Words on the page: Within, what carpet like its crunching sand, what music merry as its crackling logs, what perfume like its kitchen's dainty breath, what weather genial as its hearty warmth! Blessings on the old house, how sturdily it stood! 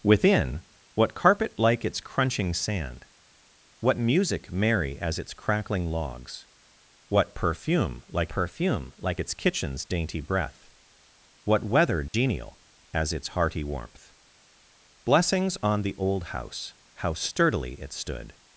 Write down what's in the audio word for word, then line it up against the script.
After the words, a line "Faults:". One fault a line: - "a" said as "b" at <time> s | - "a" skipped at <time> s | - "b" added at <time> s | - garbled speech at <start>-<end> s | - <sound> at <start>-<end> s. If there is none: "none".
Within, what carpet like its crunching sand, what music merry as its crackling logs, what perfume like perfume like its kitchen's dainty breath, what weather genial as its hearty warmth! Blessings on the old house, how sturdily it stood!
Faults:
- "perfume like" added at 8.3 s
- dropout at 12.1-12.1 s